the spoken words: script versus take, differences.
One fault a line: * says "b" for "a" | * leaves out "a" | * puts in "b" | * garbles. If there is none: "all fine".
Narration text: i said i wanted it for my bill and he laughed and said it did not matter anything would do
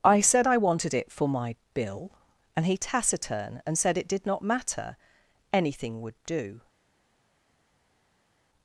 * says "taciturn" for "laughed"